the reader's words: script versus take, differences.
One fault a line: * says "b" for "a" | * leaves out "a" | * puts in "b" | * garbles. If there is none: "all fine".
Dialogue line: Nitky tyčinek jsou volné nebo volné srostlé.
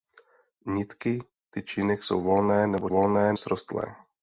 all fine